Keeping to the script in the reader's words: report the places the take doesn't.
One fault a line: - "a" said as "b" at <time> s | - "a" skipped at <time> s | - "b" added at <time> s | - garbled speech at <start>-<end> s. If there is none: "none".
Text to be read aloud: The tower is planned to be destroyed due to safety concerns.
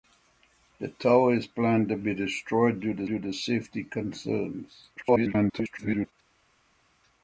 - "due to" added at 3.0 s
- garbled speech at 5.0-6.1 s